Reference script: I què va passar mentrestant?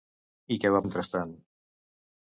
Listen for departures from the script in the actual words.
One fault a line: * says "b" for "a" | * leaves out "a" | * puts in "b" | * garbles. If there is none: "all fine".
* leaves out "passar"